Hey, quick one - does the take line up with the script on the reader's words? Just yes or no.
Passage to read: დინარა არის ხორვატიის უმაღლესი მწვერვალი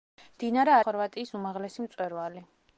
no